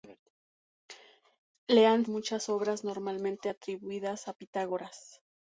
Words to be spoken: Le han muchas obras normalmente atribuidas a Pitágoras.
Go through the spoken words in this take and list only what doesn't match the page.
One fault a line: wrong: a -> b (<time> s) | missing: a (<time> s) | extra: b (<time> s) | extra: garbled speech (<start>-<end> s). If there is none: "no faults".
no faults